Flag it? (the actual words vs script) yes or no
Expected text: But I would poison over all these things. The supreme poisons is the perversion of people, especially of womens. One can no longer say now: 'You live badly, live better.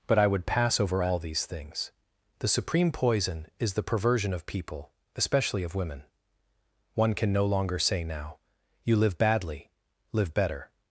yes